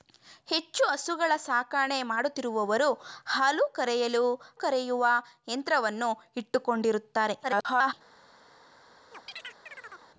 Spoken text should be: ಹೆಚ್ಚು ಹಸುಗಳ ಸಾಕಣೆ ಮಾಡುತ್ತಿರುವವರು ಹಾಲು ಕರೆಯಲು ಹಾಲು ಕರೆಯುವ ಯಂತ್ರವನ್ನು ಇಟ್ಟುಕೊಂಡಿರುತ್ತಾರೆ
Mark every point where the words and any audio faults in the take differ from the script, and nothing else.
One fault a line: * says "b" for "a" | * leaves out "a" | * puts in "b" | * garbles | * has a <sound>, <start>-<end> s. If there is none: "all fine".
* leaves out "ಹಾಲು"
* garbles
* has a chirp, 9.1-10.1 s